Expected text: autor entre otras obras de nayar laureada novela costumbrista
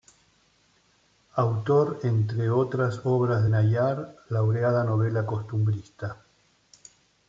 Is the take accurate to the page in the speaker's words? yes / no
no